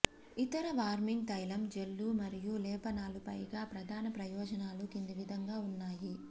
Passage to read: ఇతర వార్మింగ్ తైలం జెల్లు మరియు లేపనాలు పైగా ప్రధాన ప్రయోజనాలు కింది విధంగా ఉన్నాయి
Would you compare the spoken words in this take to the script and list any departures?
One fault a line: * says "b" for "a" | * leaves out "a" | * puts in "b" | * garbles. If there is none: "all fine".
all fine